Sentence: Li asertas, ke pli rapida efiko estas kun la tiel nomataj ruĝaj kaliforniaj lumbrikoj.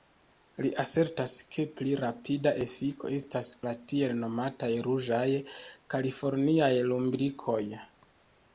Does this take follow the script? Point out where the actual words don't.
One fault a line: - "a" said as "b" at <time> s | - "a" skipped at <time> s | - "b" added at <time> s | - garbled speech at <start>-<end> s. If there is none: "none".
- "kun" skipped at 3.5 s